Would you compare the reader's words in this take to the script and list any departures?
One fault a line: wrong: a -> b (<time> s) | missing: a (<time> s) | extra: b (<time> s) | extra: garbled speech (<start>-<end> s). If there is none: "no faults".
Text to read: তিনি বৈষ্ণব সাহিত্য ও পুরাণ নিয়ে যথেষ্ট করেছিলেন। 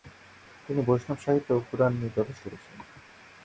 no faults